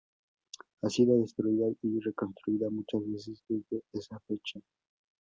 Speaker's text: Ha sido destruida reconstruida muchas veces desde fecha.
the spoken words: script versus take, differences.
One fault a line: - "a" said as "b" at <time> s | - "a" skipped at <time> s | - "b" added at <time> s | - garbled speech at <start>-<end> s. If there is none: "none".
- "y" added at 1.8 s
- "esa" added at 3.9 s